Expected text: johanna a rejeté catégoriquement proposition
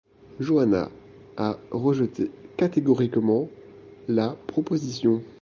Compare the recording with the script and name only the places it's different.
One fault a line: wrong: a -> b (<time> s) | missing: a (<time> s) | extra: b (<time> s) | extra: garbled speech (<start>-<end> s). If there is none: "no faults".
extra: la (4.1 s)